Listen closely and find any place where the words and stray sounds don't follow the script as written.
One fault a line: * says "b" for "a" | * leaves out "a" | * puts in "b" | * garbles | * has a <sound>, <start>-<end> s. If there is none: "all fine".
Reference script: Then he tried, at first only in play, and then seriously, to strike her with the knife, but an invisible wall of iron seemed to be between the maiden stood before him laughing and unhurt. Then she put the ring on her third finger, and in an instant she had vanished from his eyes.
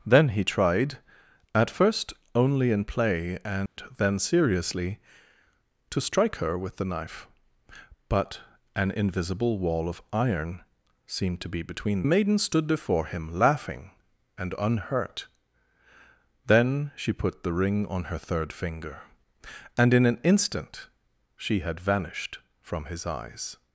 * has a dropout, 3.7-3.8 s